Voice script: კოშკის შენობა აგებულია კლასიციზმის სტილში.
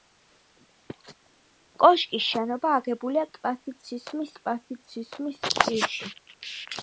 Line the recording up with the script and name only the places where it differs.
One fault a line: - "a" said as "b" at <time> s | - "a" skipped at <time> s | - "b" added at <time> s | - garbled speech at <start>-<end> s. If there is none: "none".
- "კლასიციზმის" added at 4.4 s